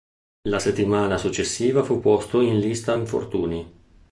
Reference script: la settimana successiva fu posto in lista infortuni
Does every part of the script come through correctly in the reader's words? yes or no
yes